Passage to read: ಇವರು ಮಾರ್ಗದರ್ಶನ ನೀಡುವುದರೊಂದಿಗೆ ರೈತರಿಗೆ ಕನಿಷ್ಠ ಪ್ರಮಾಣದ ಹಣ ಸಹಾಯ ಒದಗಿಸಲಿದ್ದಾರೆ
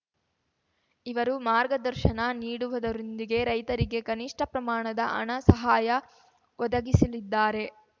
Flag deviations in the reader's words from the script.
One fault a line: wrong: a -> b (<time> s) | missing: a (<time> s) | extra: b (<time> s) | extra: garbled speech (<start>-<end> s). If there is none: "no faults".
no faults